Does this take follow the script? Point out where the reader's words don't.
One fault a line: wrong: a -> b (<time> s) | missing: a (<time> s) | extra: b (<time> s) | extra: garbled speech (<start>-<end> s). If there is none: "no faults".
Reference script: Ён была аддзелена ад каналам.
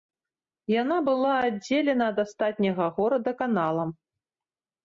wrong: Ён -> Яна (0.8 s)
extra: астатняга горада (2.3 s)